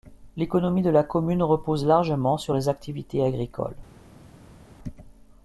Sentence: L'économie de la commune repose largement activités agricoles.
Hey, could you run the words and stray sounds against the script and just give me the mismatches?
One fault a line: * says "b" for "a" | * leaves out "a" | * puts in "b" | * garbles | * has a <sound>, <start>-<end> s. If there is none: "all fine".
* puts in "sur les"